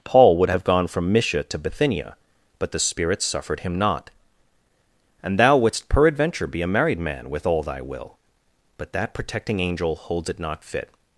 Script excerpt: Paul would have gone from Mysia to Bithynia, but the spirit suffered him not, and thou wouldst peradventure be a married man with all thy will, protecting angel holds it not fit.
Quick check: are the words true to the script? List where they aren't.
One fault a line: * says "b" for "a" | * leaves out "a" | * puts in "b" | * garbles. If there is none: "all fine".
* puts in "but that"